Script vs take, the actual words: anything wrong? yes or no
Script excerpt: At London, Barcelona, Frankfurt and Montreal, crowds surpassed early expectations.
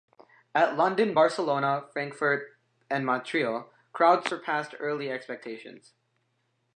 no